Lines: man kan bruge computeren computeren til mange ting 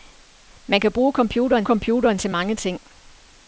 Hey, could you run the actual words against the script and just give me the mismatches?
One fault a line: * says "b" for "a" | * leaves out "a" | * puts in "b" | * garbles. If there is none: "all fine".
all fine